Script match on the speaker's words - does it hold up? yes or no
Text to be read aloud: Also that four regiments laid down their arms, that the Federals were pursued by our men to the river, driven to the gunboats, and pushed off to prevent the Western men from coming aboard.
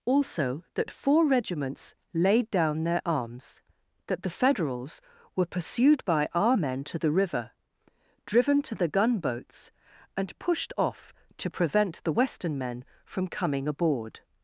yes